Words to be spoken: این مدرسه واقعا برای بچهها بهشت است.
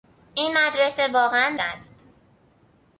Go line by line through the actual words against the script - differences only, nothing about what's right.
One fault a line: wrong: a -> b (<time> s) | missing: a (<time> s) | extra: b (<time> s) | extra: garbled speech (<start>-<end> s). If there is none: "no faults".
missing: برای بچهها بهشت (1.6 s)